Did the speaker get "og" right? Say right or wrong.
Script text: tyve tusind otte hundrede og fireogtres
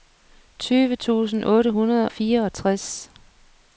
wrong